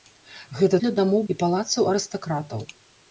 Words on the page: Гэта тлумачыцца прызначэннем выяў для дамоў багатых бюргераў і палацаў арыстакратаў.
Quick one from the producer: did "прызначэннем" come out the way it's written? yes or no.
no